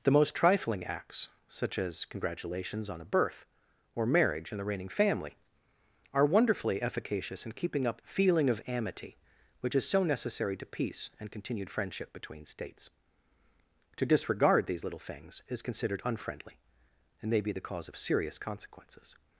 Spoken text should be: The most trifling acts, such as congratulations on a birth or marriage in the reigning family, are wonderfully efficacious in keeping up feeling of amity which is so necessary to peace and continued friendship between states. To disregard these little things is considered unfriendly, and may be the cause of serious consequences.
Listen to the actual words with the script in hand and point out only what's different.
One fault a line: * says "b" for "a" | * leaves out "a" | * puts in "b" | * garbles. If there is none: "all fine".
all fine